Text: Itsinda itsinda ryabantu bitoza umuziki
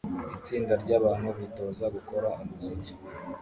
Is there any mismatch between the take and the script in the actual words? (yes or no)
yes